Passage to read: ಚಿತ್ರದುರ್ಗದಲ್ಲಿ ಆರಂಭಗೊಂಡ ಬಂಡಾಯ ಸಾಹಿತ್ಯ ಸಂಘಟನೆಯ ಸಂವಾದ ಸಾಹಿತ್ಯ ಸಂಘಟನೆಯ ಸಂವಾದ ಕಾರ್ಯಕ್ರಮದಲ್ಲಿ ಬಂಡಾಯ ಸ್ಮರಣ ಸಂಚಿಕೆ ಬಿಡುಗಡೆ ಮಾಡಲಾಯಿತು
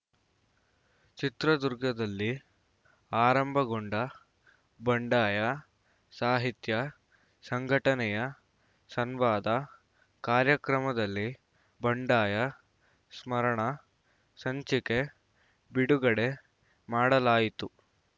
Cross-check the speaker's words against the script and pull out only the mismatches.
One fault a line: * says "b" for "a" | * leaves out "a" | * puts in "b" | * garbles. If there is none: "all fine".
* leaves out "ಸಾಹಿತ್ಯ ಸಂಘಟನೆಯ ಸಂವಾದ"